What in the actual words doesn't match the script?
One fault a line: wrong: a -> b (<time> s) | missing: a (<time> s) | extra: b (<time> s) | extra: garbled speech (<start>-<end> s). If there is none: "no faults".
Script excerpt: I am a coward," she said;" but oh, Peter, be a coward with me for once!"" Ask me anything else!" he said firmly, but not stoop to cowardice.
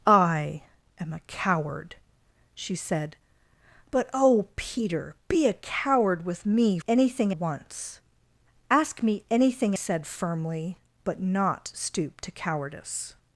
wrong: for -> anything (6.9 s)
missing: else he (9.8 s)